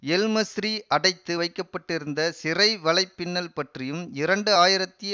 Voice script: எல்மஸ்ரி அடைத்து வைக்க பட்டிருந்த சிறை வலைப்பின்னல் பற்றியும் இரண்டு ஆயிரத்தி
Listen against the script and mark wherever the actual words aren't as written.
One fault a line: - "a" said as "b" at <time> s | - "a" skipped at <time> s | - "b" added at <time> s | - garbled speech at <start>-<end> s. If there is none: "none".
none